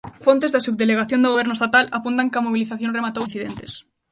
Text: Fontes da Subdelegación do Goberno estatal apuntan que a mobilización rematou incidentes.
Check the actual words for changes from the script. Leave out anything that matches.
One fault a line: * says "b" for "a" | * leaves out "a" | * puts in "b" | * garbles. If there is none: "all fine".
all fine